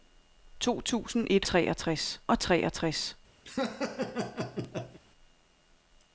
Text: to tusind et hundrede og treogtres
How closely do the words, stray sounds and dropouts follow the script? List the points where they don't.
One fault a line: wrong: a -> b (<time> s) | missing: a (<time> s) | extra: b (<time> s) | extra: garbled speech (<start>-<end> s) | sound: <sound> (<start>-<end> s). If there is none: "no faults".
wrong: hundrede -> treogtres (1.4 s)
sound: laugh (3.5-5.0 s)